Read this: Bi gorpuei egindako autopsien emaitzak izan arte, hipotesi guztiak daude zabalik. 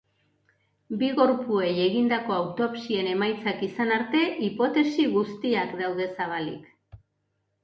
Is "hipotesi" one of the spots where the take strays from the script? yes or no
no